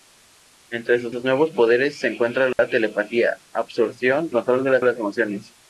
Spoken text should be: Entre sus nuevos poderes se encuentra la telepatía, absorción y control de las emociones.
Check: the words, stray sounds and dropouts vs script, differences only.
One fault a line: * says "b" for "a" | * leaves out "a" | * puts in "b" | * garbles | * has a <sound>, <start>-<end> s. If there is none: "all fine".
* puts in "sus"
* has a dropout, 2.5-2.6 s
* leaves out "y"
* puts in "las"